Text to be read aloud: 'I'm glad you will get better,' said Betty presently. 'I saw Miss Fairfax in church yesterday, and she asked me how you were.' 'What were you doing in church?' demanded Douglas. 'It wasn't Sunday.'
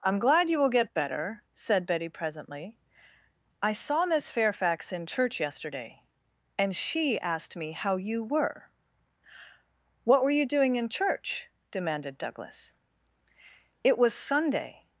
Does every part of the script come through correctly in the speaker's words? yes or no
no